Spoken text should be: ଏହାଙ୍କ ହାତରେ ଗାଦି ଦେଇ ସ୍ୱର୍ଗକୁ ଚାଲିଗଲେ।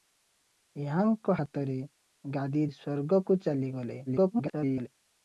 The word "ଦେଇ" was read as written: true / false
false